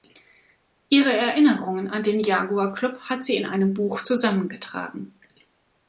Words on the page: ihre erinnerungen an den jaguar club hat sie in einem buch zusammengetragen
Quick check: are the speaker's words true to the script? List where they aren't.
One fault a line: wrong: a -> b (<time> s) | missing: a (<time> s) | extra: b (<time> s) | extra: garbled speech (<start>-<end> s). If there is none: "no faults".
no faults